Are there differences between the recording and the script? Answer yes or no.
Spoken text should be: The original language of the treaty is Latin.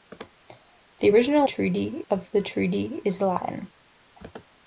yes